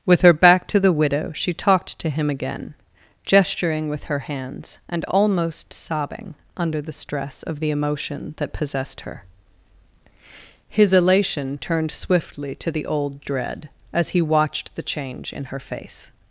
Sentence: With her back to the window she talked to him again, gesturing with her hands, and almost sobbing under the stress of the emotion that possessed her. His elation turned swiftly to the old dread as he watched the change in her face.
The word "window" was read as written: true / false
false